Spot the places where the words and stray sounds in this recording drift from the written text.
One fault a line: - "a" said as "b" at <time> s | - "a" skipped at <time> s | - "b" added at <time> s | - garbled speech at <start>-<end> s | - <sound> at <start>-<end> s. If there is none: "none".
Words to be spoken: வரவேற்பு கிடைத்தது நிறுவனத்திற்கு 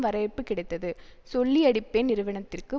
- "சொல்லியடிப்பேன்" added at 1.3 s